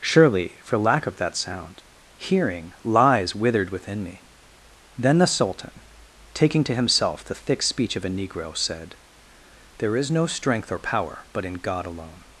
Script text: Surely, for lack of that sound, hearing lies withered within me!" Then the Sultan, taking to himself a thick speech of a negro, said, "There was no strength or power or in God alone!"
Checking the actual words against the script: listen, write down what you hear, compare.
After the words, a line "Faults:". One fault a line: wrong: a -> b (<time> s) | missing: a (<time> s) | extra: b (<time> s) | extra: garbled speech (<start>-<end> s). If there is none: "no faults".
Surely, for lack of that sound, hearing lies withered within me!" Then the Sultan, taking to himself the thick speech of a negro, said, "There is no strength or power but in God alone!"
Faults:
wrong: a -> the (7.2 s)
wrong: was -> is (9.9 s)
wrong: or -> but (11.3 s)